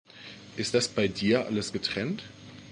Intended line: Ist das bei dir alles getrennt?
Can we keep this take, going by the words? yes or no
yes